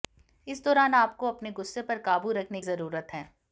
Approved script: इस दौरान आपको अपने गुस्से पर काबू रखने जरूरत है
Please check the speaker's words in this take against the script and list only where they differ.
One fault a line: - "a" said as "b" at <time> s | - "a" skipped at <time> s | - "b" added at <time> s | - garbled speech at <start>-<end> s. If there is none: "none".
none